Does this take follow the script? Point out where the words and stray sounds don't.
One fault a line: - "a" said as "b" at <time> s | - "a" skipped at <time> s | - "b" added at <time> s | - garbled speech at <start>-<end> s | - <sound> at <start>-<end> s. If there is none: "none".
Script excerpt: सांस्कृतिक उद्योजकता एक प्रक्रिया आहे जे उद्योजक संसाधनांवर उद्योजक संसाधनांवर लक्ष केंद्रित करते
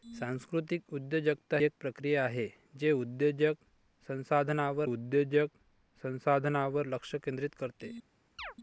- chirp at 8.4-8.5 s